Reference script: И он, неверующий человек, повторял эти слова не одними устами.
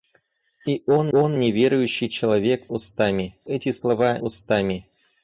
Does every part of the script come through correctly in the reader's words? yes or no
no